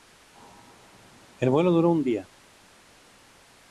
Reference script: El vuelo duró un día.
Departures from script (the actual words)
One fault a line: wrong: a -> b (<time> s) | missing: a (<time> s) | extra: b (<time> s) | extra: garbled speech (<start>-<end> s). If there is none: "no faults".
no faults